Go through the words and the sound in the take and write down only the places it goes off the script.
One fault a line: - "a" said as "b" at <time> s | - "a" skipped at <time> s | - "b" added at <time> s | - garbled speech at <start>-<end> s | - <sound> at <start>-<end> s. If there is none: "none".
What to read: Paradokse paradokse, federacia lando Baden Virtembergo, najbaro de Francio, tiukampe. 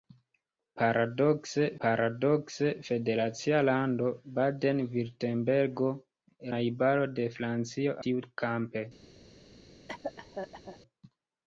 - cough at 9.9-10.8 s